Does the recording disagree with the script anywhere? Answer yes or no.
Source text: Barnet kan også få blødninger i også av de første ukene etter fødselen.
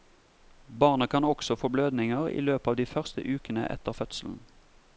yes